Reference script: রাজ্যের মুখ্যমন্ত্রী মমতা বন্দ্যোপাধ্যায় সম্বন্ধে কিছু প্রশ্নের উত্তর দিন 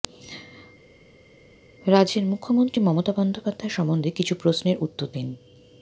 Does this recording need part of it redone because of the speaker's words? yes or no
no